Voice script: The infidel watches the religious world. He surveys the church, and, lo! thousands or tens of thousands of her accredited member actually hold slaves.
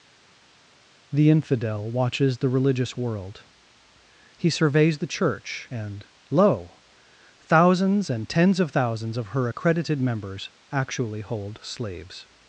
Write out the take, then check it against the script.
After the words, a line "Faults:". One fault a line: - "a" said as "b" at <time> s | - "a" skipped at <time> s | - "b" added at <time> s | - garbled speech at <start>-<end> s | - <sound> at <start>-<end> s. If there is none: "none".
The infidel watches the religious world. He surveys the church, and, lo! thousands and tens of thousands of her accredited members actually hold slaves.
Faults:
- "or" said as "and" at 8.1 s
- "member" said as "members" at 10.0 s